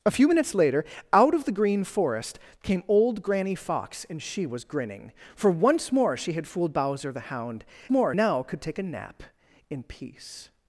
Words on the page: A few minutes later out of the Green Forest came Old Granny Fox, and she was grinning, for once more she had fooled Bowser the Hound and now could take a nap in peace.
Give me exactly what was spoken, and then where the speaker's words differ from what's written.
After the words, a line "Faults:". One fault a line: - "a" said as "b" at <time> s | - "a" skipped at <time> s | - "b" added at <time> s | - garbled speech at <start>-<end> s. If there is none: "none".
A few minutes later out of the Green Forest came Old Granny Fox, and she was grinning, for once more she had fooled Bowser the Hound more now could take a nap in peace.
Faults:
- "and" said as "more" at 7.9 s